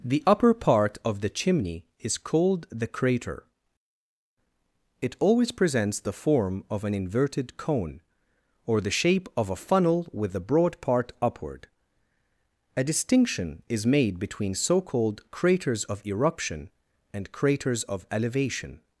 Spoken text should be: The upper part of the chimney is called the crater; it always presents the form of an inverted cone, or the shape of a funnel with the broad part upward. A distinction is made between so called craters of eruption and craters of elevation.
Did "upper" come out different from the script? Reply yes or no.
no